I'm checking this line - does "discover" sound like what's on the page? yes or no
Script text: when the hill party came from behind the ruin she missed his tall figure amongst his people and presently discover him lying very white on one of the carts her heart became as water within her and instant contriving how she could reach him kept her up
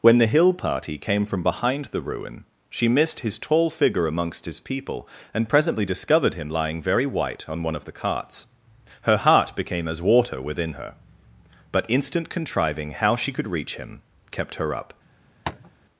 no